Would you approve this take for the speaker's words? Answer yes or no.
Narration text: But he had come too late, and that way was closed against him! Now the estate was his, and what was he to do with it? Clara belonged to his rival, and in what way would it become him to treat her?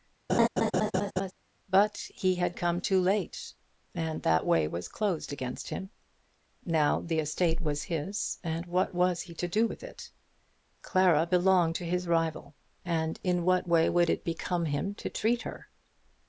yes